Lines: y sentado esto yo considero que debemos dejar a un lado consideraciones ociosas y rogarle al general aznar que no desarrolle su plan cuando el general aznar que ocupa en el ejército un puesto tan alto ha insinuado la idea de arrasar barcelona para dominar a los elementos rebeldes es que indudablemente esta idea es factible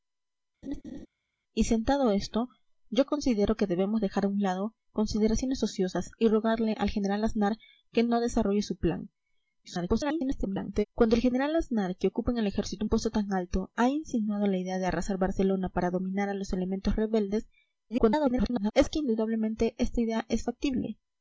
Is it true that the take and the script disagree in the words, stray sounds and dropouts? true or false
true